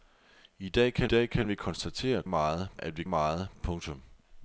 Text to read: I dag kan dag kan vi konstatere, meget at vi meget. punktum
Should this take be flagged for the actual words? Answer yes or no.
no